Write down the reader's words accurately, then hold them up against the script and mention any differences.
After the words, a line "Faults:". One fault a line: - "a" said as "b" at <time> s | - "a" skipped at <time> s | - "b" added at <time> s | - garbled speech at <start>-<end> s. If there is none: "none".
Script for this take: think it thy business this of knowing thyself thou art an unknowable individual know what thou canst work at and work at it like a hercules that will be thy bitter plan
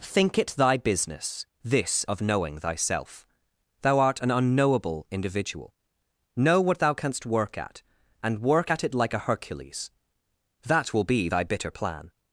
think it thy business this of knowing thyself thou art an unknowable individual know what thou canst work at and work at it like a hercules that will be thy bitter plan
Faults:
none